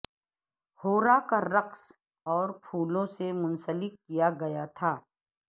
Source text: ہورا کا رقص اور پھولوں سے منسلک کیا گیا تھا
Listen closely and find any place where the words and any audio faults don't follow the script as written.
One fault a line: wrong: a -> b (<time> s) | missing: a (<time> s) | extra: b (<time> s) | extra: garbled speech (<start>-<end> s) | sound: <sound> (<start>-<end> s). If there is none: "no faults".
no faults